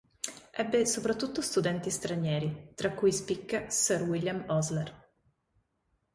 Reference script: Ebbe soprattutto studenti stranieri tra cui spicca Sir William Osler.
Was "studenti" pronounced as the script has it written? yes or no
yes